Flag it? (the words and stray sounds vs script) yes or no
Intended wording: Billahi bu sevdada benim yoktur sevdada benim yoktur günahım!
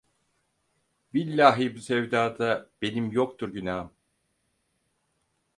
yes